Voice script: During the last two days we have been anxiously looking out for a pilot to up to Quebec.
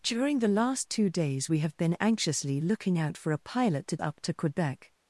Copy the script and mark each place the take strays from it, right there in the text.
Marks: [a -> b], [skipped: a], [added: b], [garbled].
During the last two days we have been anxiously looking out for a pilot to up to Quebec.